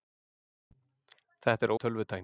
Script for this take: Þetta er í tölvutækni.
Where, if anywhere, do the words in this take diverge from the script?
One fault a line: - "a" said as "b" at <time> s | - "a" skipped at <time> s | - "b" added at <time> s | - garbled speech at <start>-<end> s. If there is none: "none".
none